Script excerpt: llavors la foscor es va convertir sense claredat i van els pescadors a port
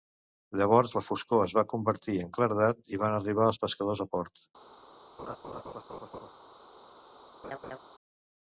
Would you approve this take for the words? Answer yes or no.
no